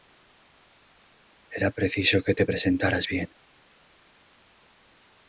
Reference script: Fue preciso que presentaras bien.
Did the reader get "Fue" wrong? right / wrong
wrong